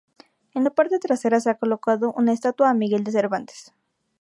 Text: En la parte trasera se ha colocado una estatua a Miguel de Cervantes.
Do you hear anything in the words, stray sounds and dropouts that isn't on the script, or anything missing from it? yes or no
no